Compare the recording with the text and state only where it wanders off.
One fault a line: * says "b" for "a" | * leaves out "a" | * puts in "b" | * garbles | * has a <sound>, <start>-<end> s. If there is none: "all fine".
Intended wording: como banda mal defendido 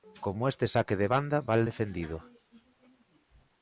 * puts in "este saque de"